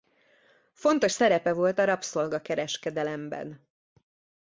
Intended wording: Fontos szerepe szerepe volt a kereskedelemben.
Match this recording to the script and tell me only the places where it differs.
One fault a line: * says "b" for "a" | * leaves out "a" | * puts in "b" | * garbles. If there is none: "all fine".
* leaves out "szerepe"
* puts in "rabszolga"